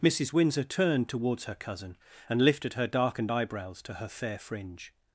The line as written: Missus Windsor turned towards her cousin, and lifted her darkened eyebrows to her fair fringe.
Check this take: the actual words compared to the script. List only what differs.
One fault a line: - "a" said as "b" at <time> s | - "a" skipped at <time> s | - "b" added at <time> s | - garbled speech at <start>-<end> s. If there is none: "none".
none